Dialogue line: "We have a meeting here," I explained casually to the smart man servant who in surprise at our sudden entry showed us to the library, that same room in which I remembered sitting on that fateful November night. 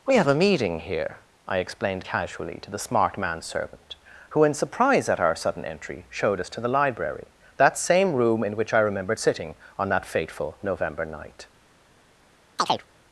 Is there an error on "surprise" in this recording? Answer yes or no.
no